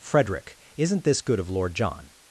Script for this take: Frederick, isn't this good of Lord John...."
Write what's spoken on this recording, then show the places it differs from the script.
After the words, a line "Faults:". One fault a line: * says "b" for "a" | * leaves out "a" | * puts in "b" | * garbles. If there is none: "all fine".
Frederick, isn't this good of Lord John...."
Faults:
all fine